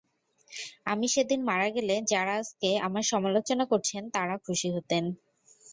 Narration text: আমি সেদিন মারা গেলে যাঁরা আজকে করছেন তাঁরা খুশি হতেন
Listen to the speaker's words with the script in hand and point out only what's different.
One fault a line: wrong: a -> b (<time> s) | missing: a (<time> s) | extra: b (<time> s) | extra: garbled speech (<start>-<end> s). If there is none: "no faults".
extra: আমার সমালোচনা (2.9 s)